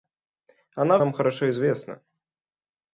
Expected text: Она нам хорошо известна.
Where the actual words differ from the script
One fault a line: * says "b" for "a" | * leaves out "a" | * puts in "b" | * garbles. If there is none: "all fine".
all fine